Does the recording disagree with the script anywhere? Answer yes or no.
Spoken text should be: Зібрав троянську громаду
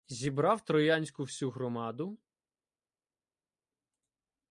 yes